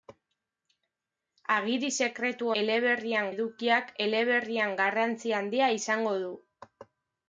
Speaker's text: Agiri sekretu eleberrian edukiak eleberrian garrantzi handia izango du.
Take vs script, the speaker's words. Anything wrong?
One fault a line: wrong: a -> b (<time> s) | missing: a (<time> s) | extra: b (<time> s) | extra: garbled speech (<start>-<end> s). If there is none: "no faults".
no faults